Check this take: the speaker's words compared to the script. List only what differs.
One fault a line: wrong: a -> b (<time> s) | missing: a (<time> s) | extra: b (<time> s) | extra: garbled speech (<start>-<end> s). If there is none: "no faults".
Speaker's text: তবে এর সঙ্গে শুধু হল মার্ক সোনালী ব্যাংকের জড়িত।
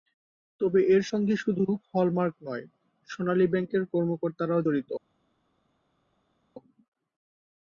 extra: নয় (2.4 s)
extra: কর্মকর্তারাও (3.9 s)